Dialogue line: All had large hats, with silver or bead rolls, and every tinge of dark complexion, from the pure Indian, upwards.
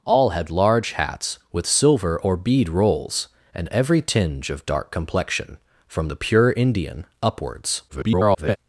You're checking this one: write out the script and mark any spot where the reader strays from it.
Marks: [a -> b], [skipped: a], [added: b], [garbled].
All had large hats, with silver or bead rolls, and every tinge of dark complexion, from the pure Indian, upwards. [garbled]